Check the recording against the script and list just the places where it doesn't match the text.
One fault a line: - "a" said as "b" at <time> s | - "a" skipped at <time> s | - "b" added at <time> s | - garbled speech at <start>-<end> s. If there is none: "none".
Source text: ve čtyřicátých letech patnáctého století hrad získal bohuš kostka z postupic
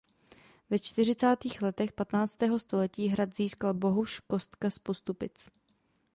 none